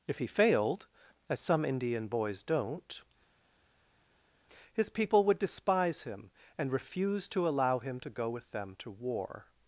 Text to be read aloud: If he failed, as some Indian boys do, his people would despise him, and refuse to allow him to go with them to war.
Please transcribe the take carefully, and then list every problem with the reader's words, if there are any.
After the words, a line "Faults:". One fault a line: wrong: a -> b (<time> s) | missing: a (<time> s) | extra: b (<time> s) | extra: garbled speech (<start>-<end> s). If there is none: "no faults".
If he failed, as some Indian boys don't, his people would despise him, and refuse to allow him to go with them to war.
Faults:
wrong: do -> don't (2.4 s)